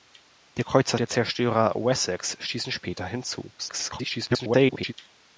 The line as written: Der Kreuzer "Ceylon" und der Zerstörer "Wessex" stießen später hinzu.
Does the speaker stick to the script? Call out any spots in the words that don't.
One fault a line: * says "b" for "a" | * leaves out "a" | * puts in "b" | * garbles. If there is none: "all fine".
* leaves out "Ceylon und"
* garbles